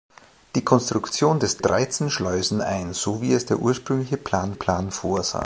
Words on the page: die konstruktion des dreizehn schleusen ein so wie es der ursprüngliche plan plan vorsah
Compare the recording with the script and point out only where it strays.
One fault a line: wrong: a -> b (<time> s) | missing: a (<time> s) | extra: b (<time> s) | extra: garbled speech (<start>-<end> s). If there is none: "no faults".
no faults